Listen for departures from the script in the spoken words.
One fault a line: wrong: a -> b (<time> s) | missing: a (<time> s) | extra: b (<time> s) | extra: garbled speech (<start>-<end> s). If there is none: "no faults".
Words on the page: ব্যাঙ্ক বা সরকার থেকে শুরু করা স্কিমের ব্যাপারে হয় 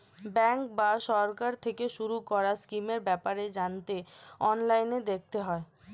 extra: জানতে অনলাইনে দেখতে (3.6 s)